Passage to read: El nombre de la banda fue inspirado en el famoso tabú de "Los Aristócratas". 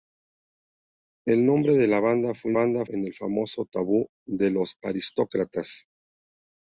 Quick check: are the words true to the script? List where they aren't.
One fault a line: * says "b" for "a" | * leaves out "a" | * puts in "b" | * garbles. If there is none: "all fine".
* says "banda" for "inspirado"